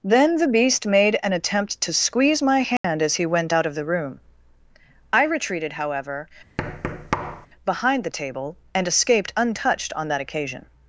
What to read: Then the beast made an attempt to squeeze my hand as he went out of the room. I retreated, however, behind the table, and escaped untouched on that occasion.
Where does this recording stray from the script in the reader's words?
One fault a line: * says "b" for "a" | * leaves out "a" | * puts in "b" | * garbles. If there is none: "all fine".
all fine